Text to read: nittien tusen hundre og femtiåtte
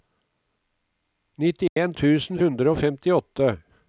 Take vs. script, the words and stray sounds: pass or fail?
fail